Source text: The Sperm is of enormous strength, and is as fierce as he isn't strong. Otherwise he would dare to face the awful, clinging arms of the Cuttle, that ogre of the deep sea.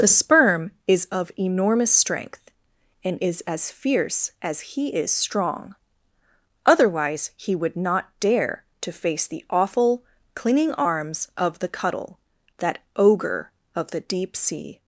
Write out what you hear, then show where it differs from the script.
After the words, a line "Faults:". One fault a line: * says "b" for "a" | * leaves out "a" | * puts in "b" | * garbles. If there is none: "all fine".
The Sperm is of enormous strength, and is as fierce as he is strong. Otherwise he would not dare to face the awful, clinging arms of the Cuttle, that ogre of the deep sea.
Faults:
* says "is" for "isn't"
* puts in "not"